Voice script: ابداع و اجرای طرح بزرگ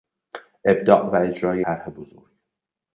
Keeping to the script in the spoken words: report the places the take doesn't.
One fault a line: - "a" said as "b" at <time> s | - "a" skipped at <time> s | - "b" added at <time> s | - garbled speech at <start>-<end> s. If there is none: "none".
none